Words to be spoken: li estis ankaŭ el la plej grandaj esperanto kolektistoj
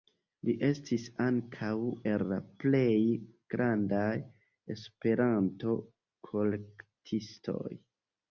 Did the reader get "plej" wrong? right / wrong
right